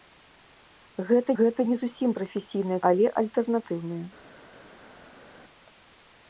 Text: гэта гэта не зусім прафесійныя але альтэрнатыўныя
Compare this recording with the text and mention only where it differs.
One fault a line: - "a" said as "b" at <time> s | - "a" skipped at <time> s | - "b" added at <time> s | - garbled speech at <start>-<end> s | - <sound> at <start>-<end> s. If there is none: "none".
none